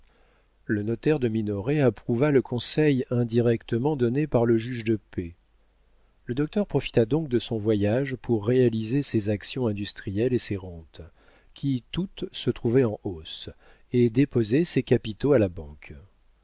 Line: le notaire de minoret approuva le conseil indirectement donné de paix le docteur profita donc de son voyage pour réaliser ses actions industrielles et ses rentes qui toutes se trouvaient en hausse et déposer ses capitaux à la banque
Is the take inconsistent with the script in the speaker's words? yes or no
yes